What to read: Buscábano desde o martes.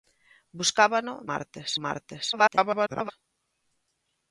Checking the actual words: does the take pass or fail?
fail